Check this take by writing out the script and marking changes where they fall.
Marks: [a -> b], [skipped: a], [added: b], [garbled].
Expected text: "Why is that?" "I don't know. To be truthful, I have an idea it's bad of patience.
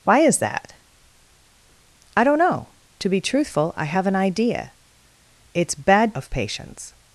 "Why is that?" "I don't know. To be truthful, I have an idea it's bad of patience.